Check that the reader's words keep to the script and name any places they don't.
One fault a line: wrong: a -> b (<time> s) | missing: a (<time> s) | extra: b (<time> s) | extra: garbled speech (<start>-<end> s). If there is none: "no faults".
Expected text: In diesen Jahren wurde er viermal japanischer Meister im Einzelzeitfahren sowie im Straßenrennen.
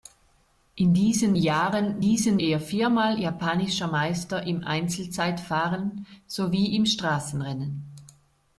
wrong: wurde -> diesen (2.0 s)